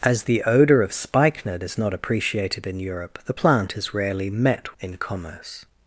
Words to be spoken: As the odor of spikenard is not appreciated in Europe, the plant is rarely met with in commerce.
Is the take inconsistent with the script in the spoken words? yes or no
yes